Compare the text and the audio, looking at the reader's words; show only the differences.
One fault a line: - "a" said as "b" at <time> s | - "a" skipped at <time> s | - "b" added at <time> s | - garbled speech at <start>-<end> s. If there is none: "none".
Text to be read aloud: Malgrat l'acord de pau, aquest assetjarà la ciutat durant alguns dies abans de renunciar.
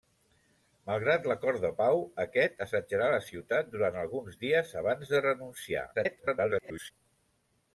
- garbled speech at 5.9-6.9 s